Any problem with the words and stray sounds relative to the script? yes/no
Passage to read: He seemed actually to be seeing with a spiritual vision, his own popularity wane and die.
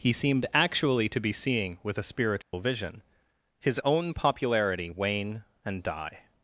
yes